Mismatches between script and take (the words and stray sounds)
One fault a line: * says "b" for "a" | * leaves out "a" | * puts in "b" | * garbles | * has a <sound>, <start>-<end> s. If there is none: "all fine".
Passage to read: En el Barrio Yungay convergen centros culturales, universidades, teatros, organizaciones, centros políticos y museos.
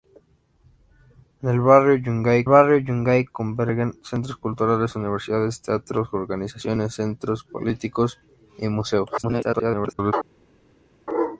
* puts in "Barrio Yungay"
* garbles